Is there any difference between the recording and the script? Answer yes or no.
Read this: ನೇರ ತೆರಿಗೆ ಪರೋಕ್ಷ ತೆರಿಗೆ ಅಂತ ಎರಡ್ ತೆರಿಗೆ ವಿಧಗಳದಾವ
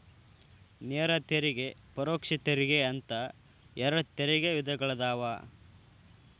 no